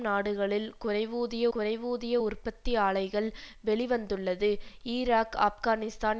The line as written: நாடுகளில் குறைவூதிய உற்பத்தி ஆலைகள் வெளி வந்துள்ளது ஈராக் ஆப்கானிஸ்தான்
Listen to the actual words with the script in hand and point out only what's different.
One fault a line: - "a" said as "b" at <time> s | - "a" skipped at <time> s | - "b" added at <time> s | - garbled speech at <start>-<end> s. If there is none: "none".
- "குறைவூதிய" added at 1.5 s